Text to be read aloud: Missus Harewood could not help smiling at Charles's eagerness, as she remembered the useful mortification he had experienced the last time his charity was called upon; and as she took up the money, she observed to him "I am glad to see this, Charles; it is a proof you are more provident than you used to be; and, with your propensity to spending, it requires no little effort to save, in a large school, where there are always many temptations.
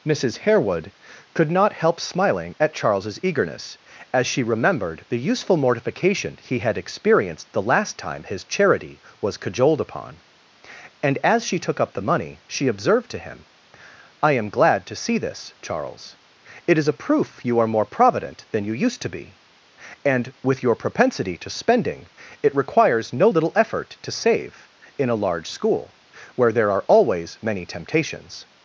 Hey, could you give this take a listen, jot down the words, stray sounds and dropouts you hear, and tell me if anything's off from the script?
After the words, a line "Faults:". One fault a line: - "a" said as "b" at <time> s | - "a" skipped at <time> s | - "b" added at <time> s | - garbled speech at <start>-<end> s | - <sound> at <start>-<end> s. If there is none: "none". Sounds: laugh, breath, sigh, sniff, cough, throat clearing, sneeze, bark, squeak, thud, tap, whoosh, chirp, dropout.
Missus Harewood could not help smiling at Charles's eagerness, as she remembered the useful mortification he had experienced the last time his charity was cajoled upon; and as she took up the money, she observed to him "I am glad to see this, Charles; it is a proof you are more provident than you used to be; and, with your propensity to spending, it requires no little effort to save, in a large school, where there are always many temptations.
Faults:
- "called" said as "cajoled" at 9.4 s